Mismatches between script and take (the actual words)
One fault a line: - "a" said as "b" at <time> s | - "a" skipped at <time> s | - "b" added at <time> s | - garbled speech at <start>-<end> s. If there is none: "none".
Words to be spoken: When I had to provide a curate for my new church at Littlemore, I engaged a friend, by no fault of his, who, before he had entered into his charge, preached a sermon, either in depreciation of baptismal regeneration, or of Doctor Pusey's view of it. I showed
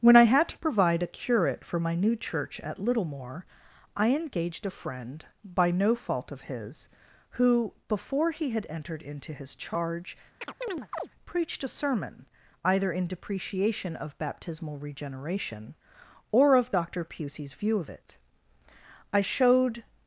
none